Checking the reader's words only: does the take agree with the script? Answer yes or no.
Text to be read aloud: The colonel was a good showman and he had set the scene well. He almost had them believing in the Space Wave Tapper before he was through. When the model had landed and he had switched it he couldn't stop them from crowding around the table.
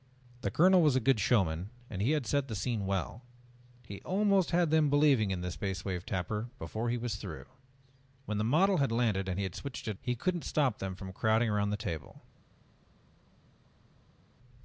yes